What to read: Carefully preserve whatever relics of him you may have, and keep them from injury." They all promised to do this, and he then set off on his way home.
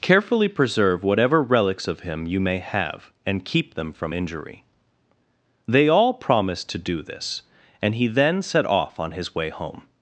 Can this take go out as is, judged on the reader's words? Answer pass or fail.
pass